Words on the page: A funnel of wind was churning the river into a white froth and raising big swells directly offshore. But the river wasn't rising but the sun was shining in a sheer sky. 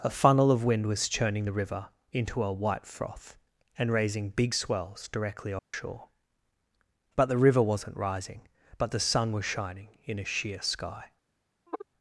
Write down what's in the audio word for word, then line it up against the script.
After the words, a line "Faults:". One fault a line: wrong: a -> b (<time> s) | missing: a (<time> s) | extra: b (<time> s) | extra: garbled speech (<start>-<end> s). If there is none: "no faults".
A funnel of wind was churning the river into a white froth and raising big swells directly offshore. But the river wasn't rising but the sun was shining in a sheer sky.
Faults:
no faults